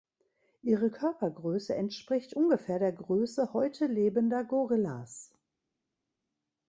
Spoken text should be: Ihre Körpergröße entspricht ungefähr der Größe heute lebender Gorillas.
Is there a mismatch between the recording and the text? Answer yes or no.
no